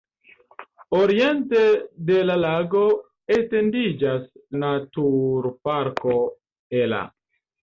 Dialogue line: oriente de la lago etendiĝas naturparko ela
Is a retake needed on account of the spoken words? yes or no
no